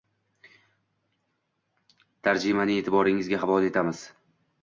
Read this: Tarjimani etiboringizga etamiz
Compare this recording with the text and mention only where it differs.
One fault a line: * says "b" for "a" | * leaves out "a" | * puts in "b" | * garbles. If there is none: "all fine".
* puts in "havola"